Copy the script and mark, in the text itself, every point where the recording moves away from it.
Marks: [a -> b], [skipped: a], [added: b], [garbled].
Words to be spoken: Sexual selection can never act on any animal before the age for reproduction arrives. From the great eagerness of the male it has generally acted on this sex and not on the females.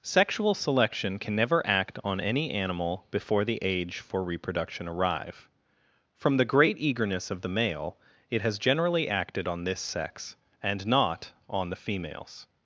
Sexual selection can never act on any animal before the age for reproduction [arrives. -> arrive] From the great eagerness of the male it has generally acted on this sex and not on the females.